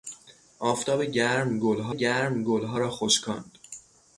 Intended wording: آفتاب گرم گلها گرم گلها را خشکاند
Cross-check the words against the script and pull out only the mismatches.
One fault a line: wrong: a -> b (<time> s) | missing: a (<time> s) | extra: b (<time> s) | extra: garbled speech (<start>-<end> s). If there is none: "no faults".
no faults